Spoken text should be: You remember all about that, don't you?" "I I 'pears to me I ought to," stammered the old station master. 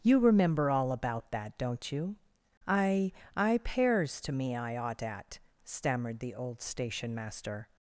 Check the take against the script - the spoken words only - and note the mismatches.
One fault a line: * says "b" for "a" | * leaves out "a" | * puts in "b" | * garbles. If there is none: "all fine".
* says "at" for "to"